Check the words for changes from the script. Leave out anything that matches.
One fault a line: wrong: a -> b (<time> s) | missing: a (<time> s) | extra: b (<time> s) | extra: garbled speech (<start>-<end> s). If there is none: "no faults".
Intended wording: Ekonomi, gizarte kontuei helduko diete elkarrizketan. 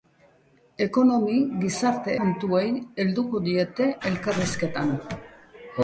no faults